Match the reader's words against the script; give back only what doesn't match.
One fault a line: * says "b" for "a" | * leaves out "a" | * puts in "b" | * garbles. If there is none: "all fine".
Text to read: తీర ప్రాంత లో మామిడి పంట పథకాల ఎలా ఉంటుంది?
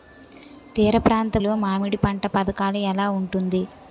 all fine